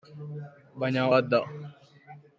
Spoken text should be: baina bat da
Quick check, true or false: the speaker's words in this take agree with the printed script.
true